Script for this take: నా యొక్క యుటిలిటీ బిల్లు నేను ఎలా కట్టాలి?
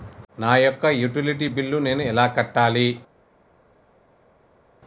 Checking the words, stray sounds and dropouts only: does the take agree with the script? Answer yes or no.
yes